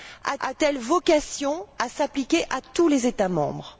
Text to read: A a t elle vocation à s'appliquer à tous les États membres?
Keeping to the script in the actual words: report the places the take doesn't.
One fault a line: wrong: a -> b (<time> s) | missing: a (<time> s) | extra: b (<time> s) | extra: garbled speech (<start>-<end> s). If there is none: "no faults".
no faults